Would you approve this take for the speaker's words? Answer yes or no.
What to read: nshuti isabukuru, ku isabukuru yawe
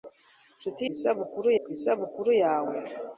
yes